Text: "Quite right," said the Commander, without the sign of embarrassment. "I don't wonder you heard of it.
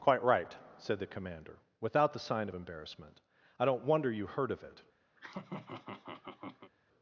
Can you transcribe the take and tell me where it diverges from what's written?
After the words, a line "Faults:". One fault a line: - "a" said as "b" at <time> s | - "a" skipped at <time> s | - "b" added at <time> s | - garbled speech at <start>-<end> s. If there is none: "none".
"Quite right," said the Commander, without the sign of embarrassment. "I don't wonder you heard of it.
Faults:
none